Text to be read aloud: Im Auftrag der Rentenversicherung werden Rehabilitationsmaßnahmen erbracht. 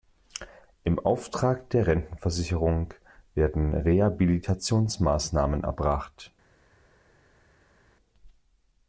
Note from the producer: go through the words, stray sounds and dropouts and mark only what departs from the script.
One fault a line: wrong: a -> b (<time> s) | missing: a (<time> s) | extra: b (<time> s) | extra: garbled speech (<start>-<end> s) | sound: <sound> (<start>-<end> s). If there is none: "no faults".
no faults